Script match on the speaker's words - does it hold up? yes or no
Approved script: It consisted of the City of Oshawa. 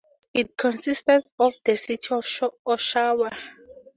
yes